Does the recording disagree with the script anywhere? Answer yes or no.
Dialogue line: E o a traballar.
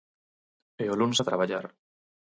yes